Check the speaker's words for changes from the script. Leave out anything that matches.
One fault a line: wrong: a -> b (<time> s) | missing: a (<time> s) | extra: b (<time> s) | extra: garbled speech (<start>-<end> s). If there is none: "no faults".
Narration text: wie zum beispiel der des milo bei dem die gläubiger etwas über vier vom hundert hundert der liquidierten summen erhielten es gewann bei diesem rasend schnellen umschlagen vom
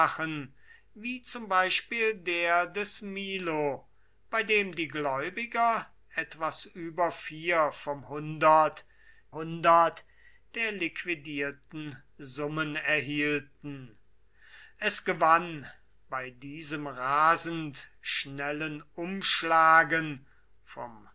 no faults